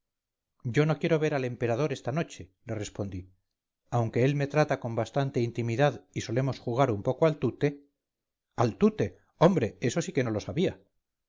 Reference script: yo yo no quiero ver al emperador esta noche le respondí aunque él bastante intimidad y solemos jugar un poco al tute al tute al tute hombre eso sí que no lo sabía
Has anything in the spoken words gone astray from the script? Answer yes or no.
yes